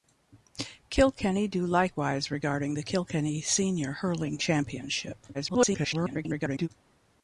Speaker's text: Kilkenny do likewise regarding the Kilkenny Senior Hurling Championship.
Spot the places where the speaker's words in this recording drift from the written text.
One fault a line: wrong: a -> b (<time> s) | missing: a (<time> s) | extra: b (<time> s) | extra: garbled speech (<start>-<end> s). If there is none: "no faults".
extra: garbled speech (5.3-6.7 s)